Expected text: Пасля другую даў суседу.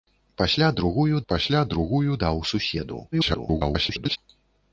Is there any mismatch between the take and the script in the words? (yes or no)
yes